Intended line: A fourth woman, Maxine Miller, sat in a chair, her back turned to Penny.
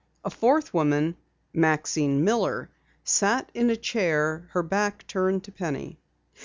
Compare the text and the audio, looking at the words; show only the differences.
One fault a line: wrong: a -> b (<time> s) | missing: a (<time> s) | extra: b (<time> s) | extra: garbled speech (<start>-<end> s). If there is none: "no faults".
no faults